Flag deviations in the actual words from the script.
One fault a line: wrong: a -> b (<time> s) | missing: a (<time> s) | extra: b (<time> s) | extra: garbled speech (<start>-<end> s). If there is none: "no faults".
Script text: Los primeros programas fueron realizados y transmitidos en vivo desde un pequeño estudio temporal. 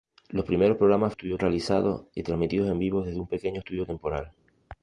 wrong: fueron -> estudio (1.1 s)